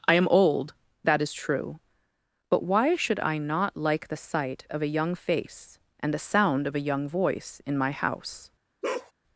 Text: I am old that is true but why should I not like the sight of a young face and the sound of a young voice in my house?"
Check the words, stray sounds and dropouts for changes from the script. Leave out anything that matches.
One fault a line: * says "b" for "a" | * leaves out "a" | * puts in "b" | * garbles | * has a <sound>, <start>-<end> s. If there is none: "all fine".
* has a bark, 8.8-9.1 s